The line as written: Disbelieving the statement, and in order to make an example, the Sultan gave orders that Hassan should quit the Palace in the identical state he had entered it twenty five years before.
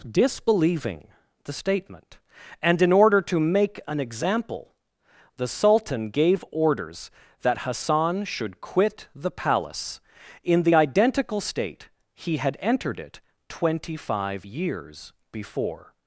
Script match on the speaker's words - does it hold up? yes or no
yes